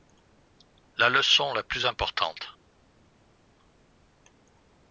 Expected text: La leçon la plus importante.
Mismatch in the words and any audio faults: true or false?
false